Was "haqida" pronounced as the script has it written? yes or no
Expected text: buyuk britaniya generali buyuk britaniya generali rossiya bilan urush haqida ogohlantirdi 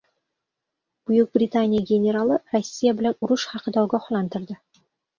yes